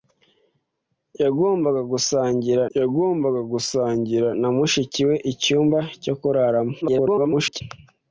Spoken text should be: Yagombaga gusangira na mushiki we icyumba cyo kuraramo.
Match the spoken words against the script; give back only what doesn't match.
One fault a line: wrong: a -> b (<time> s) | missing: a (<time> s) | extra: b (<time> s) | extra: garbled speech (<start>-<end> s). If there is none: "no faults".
extra: yagombaga gusangira (2.8 s)
extra: garbled speech (6.8-7.6 s)